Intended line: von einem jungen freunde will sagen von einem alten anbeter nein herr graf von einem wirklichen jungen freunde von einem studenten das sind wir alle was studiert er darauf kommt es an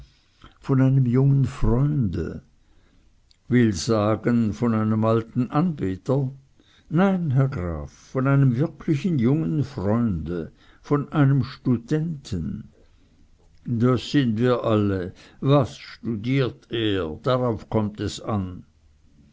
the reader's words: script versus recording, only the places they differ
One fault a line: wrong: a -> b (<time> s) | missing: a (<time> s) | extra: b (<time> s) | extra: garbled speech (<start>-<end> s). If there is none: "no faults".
no faults